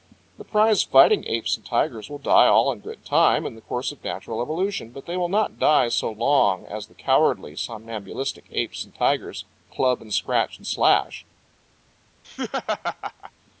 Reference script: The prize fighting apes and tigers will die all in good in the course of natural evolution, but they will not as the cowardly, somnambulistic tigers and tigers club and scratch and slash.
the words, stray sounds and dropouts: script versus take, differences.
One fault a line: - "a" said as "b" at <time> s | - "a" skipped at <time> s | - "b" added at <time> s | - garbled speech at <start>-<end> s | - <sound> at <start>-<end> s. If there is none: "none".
- "time" added at 3.0 s
- "die so long" added at 5.6 s
- "tigers" said as "apes" at 8.5 s
- laugh at 12.2-13.3 s